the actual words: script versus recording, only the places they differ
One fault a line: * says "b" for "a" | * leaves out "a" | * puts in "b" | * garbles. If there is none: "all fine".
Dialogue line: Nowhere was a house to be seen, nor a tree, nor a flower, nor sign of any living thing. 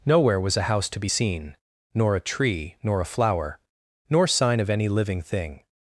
all fine